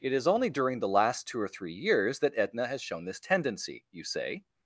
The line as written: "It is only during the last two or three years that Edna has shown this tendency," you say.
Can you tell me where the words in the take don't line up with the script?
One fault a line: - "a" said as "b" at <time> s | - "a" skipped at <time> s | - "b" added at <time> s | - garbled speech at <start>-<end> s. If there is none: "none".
none